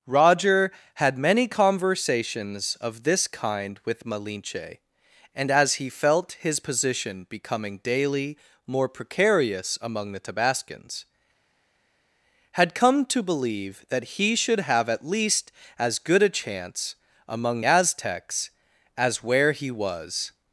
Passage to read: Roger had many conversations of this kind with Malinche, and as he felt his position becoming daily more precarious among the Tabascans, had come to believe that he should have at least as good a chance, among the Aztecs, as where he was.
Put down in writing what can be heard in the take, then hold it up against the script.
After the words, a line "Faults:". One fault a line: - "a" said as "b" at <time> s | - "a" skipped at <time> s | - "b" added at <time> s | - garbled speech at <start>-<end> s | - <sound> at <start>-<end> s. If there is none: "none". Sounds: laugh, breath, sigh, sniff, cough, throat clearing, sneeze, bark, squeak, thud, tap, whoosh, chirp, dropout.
Roger had many conversations of this kind with Malinche, and as he felt his position becoming daily more precarious among the Tabascans, had come to believe that he should have at least as good a chance, among Aztecs, as where he was.
Faults:
- "the" skipped at 17.6 s